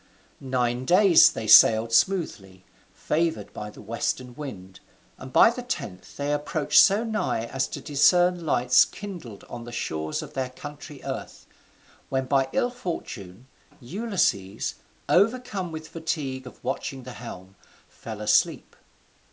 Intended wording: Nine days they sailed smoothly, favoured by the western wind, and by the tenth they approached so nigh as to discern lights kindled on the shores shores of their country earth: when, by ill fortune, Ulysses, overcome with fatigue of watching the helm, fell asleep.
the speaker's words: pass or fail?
fail